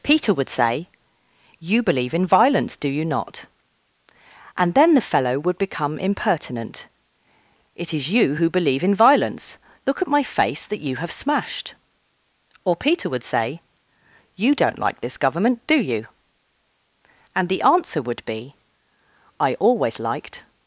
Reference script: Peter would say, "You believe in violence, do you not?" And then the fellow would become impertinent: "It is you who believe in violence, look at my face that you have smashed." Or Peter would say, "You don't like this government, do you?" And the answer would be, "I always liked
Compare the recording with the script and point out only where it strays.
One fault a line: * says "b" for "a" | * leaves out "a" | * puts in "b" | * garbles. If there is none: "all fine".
all fine